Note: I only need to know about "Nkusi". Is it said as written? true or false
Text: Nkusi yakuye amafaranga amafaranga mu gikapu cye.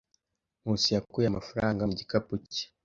true